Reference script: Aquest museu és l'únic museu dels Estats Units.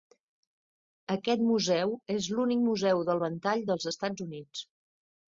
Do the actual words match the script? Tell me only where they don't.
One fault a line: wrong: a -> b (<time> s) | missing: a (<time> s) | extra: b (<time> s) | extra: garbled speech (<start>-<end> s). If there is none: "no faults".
extra: del ventall (3.1 s)